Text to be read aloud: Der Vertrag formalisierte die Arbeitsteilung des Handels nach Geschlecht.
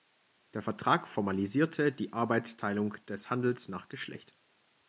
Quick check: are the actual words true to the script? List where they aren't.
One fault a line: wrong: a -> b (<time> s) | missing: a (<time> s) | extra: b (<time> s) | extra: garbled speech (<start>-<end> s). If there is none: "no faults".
no faults